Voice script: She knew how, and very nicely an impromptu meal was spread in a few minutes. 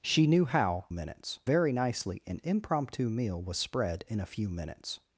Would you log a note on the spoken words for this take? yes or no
yes